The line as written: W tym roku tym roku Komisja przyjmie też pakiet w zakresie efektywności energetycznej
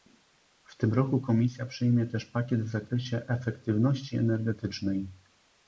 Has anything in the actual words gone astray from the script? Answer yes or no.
yes